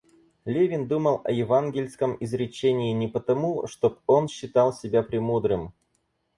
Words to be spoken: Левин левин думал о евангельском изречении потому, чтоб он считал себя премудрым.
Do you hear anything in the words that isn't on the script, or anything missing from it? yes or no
yes